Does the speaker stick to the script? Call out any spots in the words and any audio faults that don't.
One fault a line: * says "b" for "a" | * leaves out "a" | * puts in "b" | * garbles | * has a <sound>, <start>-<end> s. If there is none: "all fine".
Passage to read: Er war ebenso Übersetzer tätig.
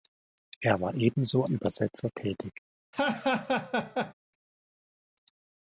* has a laugh, 2.9-4.1 s